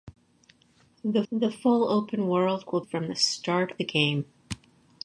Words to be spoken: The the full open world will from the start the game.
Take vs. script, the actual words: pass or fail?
pass